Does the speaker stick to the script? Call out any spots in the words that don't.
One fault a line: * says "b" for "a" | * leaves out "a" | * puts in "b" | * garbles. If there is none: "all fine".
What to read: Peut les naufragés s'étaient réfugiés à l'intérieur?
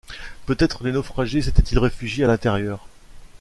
* puts in "être"
* puts in "ils"